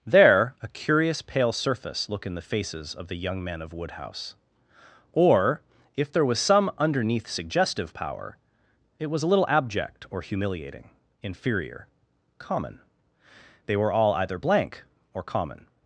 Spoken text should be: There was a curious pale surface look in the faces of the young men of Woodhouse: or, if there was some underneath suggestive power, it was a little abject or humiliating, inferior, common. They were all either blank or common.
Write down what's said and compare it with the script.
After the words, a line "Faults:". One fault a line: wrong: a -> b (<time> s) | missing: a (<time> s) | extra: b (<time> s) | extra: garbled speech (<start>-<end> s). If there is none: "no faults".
There a curious pale surface look in the faces of the young men of Woodhouse: or, if there was some underneath suggestive power, it was a little abject or humiliating, inferior, common. They were all either blank or common.
Faults:
missing: was (0.6 s)